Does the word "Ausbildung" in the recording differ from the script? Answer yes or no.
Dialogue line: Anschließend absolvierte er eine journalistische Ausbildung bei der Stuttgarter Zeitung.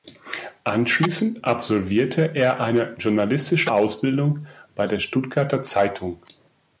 no